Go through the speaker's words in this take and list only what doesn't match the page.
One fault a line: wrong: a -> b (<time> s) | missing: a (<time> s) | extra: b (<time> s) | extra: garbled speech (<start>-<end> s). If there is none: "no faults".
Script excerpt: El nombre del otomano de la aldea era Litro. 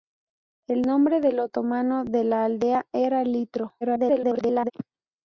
extra: garbled speech (3.8-4.7 s)